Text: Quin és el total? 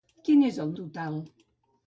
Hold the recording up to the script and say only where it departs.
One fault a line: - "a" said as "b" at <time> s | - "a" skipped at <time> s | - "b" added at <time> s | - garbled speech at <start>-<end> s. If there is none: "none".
none